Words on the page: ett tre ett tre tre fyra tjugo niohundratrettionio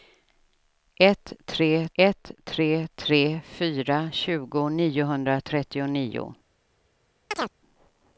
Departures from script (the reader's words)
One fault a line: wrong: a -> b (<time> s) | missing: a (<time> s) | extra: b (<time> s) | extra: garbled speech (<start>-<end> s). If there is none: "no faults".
no faults